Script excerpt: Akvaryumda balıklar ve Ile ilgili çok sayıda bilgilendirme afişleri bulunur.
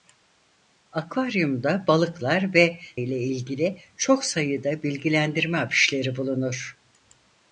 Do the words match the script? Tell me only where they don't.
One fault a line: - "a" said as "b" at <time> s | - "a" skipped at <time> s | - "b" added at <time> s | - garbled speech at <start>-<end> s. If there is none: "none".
none